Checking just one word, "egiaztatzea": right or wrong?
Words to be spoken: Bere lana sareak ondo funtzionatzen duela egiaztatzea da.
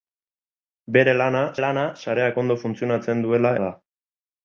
wrong